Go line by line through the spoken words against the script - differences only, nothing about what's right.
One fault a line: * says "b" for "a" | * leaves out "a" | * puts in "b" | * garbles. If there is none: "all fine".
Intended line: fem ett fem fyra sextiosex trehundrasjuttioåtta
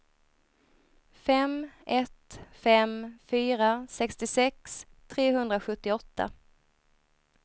all fine